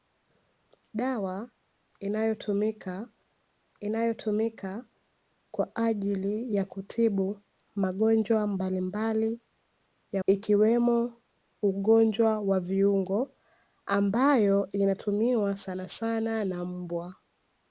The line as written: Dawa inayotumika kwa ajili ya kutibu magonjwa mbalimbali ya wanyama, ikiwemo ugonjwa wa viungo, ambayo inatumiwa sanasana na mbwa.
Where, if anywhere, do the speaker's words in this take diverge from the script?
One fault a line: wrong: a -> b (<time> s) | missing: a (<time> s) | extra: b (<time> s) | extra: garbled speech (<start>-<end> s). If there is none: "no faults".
extra: inayotumika (3.8 s)
missing: wanyama (10.2 s)